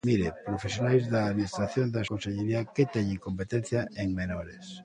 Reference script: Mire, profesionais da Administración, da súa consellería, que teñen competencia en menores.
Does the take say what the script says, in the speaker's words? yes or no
no